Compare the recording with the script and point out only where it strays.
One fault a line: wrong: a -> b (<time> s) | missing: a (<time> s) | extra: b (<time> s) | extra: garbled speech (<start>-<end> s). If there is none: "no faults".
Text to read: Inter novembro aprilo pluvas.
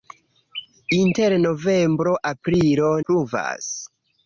no faults